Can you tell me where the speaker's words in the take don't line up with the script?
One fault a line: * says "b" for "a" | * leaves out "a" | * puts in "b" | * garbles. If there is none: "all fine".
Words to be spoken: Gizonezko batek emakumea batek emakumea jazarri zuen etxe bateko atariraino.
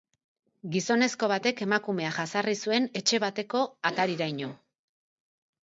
* leaves out "batek emakumea"